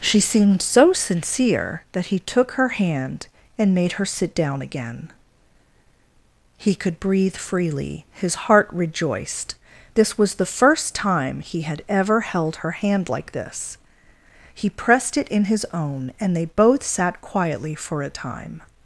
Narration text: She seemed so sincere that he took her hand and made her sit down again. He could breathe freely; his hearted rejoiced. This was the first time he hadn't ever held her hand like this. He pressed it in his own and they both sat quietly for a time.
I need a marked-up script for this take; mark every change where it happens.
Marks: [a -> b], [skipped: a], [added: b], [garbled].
She seemed so sincere that he took her hand and made her sit down again. He could breathe freely; his [hearted -> heart] rejoiced. This was the first time he [hadn't -> had] ever held her hand like this. He pressed it in his own and they both sat quietly for a time.